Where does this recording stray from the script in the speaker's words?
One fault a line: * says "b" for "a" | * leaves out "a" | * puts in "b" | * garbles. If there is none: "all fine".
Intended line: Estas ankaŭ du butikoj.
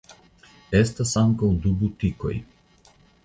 all fine